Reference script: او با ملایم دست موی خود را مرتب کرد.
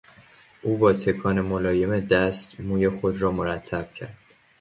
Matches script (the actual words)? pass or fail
fail